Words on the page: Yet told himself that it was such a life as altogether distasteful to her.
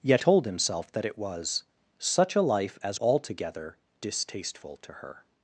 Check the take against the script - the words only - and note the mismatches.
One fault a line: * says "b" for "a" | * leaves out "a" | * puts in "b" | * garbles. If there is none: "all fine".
all fine